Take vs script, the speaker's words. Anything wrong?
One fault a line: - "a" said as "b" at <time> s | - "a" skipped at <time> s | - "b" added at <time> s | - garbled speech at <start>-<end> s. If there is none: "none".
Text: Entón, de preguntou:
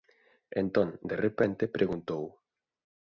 - "repente" added at 1.2 s